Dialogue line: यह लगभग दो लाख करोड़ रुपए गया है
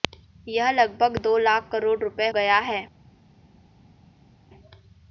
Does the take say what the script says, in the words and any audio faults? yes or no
yes